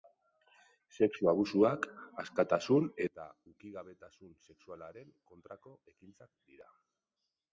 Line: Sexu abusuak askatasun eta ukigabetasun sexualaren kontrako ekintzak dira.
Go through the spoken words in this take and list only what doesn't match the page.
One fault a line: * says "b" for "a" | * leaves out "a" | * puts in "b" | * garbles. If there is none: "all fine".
all fine